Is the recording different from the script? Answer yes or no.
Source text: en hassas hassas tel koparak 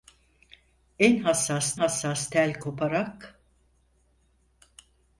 no